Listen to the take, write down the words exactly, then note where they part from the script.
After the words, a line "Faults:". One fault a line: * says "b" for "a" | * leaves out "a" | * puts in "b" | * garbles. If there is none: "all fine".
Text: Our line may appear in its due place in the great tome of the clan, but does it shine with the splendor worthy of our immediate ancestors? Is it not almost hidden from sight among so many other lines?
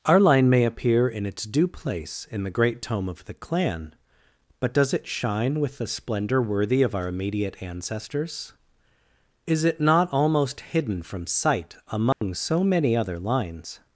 Our line may appear in its due place in the great tome of the clan, but does it shine with the splendor worthy of our immediate ancestors? Is it not almost hidden from sight among so many other lines?
Faults:
all fine